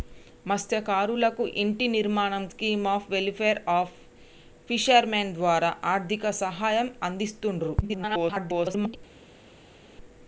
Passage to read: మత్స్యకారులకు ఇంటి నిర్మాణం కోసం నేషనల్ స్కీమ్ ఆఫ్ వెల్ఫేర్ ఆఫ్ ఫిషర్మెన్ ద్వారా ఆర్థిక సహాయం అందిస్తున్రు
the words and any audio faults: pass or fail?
fail